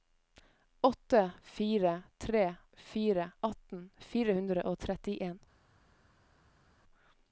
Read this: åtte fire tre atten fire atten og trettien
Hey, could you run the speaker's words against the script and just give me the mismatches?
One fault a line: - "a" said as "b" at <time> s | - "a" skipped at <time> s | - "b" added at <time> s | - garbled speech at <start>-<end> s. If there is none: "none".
- "fire" added at 2.8 s
- "atten" said as "hundre" at 4.4 s